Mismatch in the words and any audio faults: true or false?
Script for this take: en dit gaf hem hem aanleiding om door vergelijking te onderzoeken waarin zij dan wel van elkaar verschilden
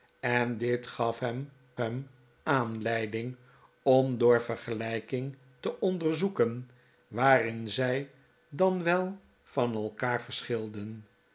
false